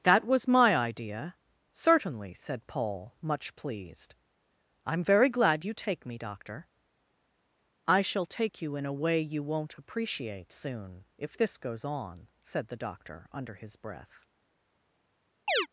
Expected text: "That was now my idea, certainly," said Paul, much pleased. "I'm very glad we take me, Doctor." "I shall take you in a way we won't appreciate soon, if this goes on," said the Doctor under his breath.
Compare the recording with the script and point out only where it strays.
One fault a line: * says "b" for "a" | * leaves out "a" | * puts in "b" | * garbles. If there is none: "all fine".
* leaves out "now"
* says "you" for "we"
* says "you" for "we"